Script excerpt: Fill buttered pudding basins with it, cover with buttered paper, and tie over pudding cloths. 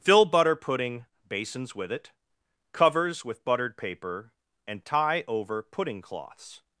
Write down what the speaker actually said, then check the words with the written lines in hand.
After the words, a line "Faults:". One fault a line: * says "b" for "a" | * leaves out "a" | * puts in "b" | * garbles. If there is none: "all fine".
Fill butter pudding basins with it, covers with buttered paper, and tie over pudding cloths.
Faults:
* says "butter" for "buttered"
* says "covers" for "cover"